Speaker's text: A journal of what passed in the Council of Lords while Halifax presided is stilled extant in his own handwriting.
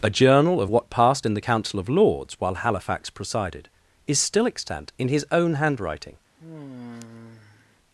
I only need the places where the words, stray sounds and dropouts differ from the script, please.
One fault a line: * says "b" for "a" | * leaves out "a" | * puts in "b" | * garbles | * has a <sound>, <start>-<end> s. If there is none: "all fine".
* says "still" for "stilled"
* has a sigh, 6.4-7.8 s